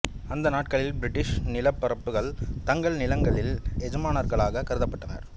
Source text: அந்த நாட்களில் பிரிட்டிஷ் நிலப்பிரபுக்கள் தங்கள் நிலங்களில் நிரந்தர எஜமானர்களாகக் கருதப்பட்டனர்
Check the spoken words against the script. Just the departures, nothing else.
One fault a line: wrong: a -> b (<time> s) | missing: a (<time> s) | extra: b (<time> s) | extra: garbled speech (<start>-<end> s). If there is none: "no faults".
missing: நிரந்தர (3.5 s)